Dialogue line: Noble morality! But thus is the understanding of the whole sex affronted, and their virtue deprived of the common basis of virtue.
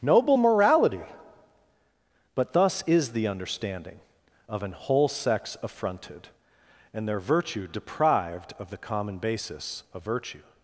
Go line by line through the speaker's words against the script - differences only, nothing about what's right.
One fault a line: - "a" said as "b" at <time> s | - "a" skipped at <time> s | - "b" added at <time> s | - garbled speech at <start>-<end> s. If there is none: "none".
- "the" said as "an" at 4.6 s